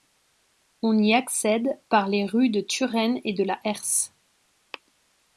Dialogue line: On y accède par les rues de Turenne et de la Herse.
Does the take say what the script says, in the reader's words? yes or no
yes